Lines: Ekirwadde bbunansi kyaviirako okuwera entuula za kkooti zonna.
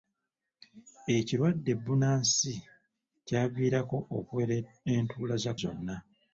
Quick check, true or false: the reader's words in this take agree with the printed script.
false